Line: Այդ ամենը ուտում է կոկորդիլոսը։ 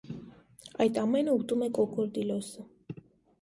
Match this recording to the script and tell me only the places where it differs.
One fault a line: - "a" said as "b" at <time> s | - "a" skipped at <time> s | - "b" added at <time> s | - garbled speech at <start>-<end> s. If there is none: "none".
none